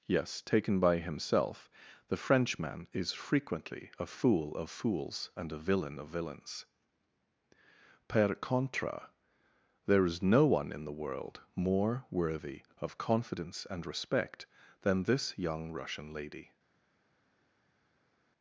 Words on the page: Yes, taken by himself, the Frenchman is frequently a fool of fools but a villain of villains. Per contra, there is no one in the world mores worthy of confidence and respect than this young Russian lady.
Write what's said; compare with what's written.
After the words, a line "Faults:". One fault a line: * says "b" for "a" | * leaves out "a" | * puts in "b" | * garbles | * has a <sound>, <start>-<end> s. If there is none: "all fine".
Yes, taken by himself, the Frenchman is frequently a fool of fools and a villain of villains. Per contra, there is no one in the world more worthy of confidence and respect than this young Russian lady.
Faults:
* says "and" for "but"
* says "more" for "mores"